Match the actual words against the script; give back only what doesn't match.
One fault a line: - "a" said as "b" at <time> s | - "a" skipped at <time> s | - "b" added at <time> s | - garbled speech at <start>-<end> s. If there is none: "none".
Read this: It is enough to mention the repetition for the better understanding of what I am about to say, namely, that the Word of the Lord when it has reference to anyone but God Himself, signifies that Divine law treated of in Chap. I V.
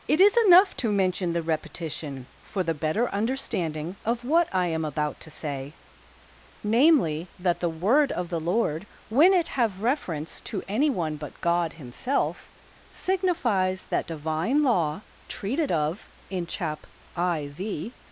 - "has" said as "have" at 9.5 s